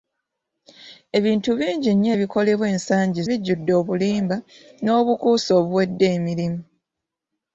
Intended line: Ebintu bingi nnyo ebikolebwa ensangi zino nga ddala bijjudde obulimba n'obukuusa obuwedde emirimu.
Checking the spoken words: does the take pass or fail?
fail